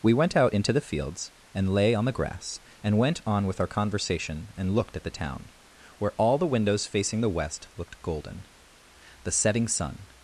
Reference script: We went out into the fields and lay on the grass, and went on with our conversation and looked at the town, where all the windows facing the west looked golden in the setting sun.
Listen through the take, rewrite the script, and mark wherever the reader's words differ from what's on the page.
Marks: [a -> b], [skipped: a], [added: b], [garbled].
We went out into the fields and lay on the grass, and went on with our conversation and looked at the town, where all the windows facing the west looked golden [skipped: in] the setting sun.